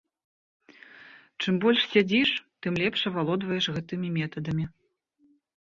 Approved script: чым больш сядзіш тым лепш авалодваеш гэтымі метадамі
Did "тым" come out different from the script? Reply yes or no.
no